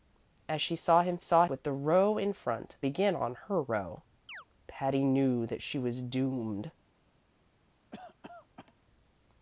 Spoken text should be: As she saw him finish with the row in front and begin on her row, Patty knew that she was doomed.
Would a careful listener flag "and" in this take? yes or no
yes